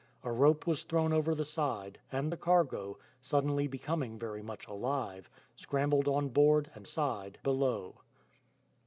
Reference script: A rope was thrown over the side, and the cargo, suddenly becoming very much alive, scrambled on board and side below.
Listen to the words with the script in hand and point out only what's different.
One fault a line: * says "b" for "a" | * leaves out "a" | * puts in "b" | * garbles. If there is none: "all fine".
all fine